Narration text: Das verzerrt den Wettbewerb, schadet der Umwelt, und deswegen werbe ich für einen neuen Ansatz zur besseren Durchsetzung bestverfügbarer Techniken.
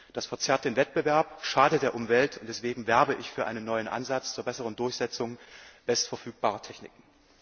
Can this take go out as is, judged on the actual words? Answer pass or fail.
pass